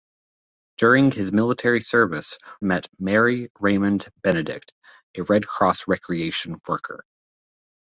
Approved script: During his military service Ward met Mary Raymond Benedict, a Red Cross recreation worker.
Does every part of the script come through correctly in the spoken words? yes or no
no